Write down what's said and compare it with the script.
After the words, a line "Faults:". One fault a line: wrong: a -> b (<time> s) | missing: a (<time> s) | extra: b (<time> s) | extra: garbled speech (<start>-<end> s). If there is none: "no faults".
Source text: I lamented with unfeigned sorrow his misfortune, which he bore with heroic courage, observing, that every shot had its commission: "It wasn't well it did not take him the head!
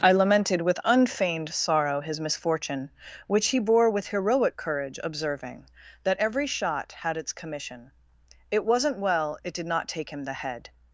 I lamented with unfeigned sorrow his misfortune, which he bore with heroic courage, observing, that every shot had its commission: "It wasn't well it did not take him the head!
Faults:
no faults